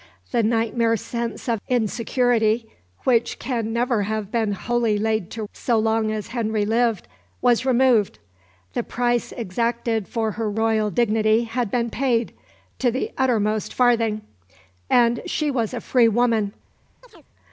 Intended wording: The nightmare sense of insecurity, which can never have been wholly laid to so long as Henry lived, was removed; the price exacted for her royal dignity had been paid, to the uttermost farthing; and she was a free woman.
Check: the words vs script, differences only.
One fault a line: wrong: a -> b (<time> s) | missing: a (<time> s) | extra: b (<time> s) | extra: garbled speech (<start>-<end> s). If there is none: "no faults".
no faults